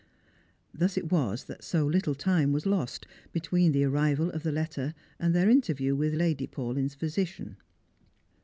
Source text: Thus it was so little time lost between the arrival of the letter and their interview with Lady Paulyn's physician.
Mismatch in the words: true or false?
true